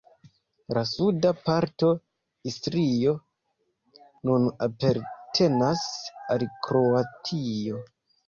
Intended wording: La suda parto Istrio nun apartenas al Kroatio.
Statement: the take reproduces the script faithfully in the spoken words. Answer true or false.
true